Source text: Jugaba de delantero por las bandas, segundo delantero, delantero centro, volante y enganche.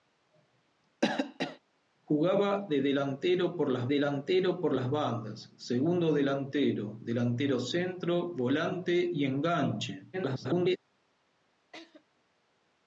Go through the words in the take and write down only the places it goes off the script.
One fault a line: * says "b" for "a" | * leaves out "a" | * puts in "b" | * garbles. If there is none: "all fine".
* puts in "delantero por las"
* garbles